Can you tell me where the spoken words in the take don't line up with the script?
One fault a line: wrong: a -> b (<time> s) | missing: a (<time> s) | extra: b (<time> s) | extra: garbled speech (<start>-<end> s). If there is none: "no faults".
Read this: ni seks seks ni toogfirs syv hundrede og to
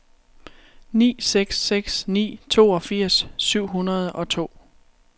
no faults